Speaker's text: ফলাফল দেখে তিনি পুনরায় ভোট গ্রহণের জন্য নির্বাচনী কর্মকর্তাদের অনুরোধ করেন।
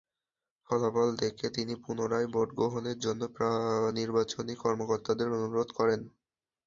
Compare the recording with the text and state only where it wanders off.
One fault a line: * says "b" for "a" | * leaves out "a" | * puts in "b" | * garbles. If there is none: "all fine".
all fine